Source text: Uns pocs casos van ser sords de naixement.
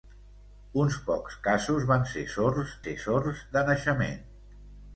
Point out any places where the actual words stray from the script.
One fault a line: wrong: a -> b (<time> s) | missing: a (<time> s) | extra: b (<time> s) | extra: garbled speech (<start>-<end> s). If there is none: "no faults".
extra: ser sords (2.8 s)